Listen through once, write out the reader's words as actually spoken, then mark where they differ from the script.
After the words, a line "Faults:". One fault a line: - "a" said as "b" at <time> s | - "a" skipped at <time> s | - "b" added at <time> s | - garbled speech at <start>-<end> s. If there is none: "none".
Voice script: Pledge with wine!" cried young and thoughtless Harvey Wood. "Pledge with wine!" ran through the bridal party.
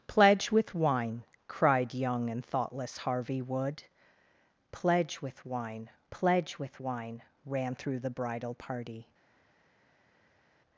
Pledge with wine!" cried young and thoughtless Harvey Wood. "Pledge with wine pledge with wine!" ran through the bridal party.
Faults:
- "pledge with wine" added at 6.1 s